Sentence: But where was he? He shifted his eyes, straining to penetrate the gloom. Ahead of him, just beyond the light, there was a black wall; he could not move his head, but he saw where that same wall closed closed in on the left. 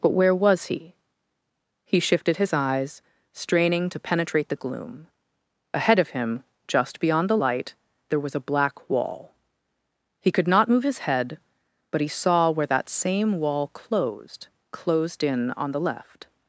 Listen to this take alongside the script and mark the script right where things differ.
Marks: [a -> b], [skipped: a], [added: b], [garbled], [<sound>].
But where was he? He shifted his eyes, straining to penetrate the gloom. Ahead of him, just beyond the light, there was a black wall; he could not move his head, but he saw where that same wall closed closed in on the left.